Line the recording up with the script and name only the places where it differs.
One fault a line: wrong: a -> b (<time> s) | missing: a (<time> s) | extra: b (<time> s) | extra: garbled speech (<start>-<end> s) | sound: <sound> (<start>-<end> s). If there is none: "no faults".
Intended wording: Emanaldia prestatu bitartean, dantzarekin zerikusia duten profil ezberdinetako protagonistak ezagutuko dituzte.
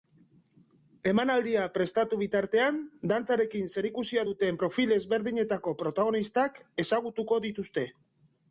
no faults